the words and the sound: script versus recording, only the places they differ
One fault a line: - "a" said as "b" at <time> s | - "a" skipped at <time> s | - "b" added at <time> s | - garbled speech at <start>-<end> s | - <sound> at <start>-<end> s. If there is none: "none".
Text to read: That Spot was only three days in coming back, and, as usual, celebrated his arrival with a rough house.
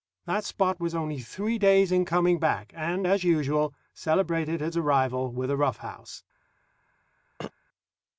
- throat clearing at 7.4-7.5 s